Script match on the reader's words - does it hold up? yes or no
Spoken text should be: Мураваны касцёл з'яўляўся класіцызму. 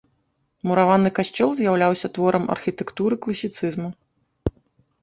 no